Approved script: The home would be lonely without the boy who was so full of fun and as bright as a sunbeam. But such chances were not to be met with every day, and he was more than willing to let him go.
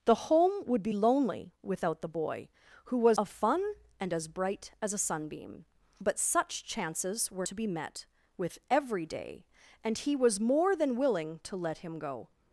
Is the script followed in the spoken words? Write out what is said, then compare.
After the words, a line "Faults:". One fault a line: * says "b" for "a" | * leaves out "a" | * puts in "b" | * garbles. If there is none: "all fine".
The home would be lonely without the boy who was of fun and as bright as a sunbeam. But such chances were to be met with every day, and he was more than willing to let him go.
Faults:
* leaves out "so full"
* leaves out "not"